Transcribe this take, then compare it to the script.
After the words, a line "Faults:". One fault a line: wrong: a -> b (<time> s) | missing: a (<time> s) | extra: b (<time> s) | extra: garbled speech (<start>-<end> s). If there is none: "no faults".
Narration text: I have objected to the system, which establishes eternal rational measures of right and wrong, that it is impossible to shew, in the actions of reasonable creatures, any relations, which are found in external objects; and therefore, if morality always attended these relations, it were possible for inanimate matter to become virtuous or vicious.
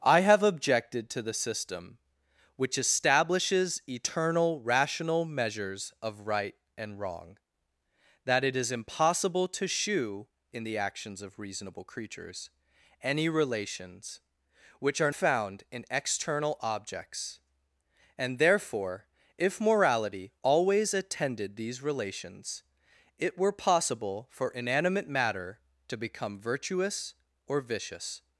I have objected to the system, which establishes eternal rational measures of right and wrong, that it is impossible to shew, in the actions of reasonable creatures, any relations, which are found in external objects; and therefore, if morality always attended these relations, it were possible for inanimate matter to become virtuous or vicious.
Faults:
no faults